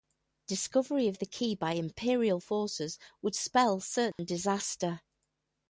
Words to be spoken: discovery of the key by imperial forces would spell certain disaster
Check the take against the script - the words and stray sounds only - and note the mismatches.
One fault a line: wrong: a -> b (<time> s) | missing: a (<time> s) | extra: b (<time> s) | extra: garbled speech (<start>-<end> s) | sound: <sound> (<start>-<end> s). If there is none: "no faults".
sound: dropout (4.1-4.2 s)